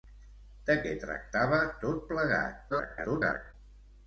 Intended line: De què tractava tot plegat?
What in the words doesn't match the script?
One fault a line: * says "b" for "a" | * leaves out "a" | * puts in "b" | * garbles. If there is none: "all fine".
* garbles